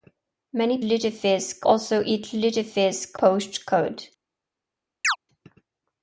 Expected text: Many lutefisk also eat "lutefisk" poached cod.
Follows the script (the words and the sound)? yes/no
no